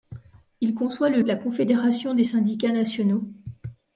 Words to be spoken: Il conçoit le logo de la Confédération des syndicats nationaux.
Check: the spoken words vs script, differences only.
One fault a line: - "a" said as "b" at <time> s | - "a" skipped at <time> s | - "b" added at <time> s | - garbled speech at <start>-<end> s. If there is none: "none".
- "logo" skipped at 1.2 s